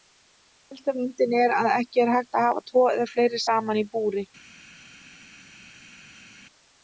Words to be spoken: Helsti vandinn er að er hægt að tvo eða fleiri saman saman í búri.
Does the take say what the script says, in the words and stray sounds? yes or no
no